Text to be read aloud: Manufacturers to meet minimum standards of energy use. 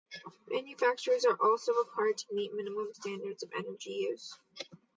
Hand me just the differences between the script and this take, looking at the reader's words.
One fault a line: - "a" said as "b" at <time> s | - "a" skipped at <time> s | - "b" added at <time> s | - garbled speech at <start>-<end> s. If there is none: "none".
- "are also required" added at 1.2 s